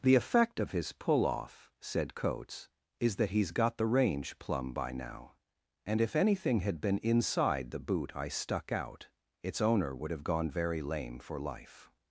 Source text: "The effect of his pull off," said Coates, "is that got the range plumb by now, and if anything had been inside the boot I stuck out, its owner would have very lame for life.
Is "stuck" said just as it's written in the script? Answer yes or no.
yes